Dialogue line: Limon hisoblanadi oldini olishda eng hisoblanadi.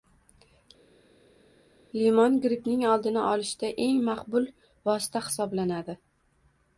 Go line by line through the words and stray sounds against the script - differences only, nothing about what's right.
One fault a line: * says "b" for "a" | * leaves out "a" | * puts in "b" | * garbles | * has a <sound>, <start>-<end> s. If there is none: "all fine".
* says "grippning" for "hisoblanadi"
* puts in "maqbul vosita"